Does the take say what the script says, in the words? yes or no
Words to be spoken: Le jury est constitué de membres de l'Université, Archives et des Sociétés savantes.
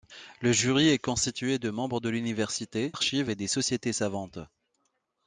yes